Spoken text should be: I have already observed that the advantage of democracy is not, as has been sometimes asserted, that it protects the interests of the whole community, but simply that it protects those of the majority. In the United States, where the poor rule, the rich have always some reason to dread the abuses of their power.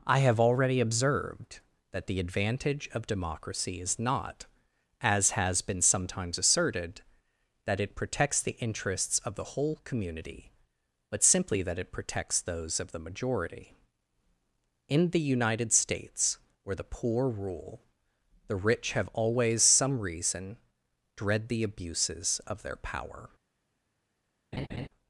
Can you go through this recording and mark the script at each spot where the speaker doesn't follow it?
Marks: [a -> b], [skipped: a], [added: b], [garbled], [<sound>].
I have already observed that the advantage of democracy is not, as has been sometimes asserted, that it protects the interests of the whole community, but simply that it protects those of the majority. In the United States, where the poor rule, the rich have always some reason [skipped: to] dread the abuses of their power. [laugh]